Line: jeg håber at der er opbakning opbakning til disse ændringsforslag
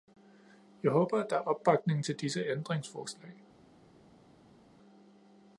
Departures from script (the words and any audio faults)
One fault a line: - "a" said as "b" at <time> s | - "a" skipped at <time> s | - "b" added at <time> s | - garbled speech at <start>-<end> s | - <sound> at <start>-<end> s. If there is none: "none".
- "opbakning" skipped at 2.0 s